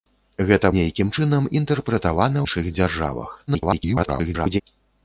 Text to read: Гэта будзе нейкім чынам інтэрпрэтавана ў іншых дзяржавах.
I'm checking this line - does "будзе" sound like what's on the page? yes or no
no